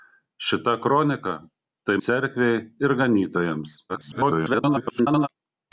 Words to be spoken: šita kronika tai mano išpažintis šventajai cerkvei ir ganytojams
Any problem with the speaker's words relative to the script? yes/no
yes